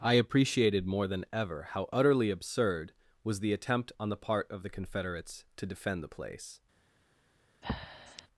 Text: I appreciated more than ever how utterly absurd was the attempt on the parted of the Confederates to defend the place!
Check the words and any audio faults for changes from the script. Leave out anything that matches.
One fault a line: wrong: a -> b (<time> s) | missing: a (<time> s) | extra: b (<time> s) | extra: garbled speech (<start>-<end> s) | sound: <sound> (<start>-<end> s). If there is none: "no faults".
wrong: parted -> part (4.2 s)
sound: breath (7.6-8.3 s)